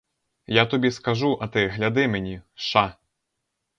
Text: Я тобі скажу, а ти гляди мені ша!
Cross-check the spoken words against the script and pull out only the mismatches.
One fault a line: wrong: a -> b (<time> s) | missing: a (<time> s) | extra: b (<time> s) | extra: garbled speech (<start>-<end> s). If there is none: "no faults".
no faults